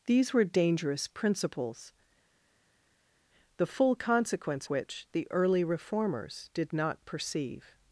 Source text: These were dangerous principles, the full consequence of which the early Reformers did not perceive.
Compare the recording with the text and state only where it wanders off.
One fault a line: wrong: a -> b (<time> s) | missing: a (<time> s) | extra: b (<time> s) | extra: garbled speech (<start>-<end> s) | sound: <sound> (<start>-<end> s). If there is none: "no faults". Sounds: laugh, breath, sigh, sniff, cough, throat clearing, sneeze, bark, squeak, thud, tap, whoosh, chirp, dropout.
missing: of (4.7 s)